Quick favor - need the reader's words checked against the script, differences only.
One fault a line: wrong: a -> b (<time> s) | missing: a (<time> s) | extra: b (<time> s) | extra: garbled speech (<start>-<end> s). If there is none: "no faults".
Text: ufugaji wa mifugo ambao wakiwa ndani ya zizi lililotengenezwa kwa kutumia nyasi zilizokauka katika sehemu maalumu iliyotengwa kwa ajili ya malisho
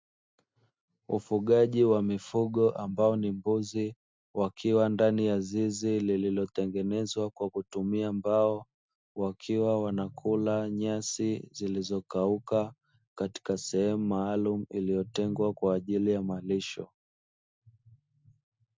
extra: ni mbuzi (3.1 s)
extra: mbao wakiwa wanakula (8.1 s)